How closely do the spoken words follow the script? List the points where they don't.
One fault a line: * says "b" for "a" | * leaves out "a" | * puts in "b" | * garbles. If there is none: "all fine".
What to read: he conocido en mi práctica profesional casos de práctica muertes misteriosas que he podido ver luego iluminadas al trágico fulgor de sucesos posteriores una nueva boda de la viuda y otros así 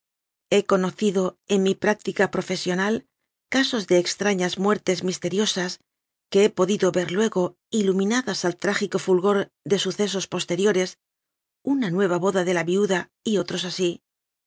* says "extrañas" for "práctica"